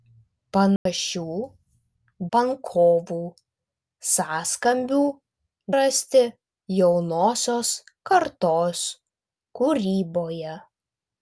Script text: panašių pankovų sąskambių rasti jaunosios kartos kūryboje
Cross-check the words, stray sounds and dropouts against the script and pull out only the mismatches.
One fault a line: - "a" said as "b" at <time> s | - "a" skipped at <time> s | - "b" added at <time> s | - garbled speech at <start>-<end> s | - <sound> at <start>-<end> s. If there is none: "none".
- dropout at 0.8-0.9 s